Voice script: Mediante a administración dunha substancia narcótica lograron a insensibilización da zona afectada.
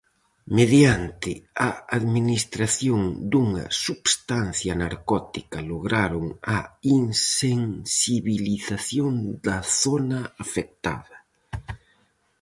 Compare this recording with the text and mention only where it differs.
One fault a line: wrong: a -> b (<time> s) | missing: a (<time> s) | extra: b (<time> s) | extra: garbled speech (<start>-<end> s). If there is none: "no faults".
no faults